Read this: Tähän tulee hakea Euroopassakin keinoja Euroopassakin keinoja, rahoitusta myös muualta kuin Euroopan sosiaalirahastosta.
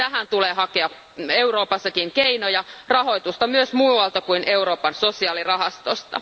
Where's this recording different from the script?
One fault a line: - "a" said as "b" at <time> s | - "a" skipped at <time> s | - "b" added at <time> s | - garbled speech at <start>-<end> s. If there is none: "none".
- "Euroopassakin keinoja" skipped at 2.6 s